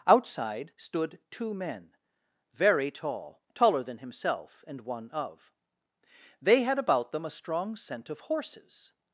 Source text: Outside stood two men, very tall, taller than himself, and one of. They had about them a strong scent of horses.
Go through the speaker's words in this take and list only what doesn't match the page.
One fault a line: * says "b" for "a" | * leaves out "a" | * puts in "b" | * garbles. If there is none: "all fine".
all fine